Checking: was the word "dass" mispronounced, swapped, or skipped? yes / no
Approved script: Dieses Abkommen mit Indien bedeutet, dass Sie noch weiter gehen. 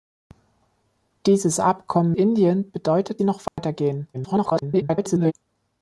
yes